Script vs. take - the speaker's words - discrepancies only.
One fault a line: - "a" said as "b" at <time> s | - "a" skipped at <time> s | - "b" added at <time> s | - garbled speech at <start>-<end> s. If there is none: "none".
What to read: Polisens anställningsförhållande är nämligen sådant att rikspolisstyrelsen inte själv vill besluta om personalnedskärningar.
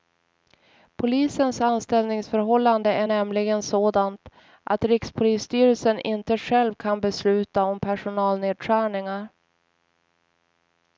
- "vill" said as "kan" at 6.7 s